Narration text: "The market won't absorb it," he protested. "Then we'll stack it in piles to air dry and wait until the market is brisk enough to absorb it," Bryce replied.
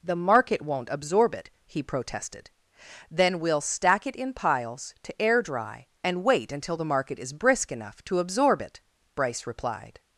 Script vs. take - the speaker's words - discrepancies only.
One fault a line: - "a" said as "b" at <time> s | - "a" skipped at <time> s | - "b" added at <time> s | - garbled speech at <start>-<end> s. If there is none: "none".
none